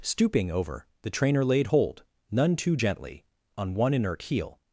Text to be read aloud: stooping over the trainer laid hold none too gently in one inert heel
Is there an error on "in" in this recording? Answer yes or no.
yes